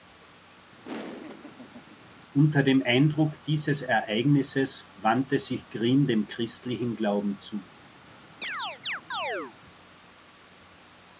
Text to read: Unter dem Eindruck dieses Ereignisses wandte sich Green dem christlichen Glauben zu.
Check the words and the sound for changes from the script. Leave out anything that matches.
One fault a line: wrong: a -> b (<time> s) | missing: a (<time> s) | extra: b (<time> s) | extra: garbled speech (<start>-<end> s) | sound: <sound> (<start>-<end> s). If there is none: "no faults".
sound: laugh (0.8-2.0 s)
sound: chirp (8.4-9.6 s)